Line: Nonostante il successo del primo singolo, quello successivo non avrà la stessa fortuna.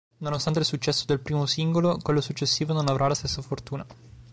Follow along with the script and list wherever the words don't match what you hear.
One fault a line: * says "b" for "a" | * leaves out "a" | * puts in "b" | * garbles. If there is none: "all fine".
all fine